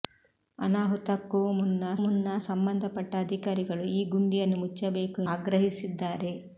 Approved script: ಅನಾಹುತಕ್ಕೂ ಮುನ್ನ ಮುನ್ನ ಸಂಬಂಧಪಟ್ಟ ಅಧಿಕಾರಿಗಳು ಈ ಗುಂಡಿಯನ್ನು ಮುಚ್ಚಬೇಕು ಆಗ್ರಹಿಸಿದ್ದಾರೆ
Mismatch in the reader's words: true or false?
false